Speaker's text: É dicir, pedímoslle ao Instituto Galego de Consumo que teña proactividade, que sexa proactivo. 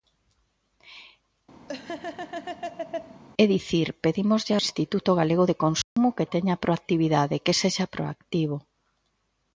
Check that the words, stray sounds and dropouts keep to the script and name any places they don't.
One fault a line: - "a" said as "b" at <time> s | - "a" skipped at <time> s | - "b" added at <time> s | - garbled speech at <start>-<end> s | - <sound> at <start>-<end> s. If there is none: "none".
- laugh at 1.7-3.2 s
- "ao" skipped at 4.5 s
- dropout at 5.8-6.0 s